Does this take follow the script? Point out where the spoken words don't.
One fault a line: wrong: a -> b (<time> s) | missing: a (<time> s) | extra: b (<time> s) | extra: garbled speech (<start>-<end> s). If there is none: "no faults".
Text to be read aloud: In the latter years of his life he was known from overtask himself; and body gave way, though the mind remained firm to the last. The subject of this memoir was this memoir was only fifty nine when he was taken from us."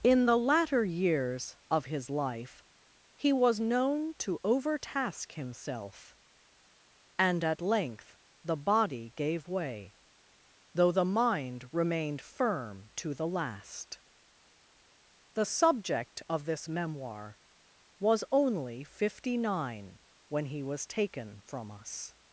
wrong: from -> to (4.2 s)
extra: at length the (7.4 s)
missing: this memoir was (18.2 s)